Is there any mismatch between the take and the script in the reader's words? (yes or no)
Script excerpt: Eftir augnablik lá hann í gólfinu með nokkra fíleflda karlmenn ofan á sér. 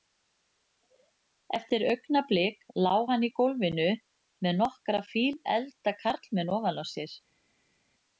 no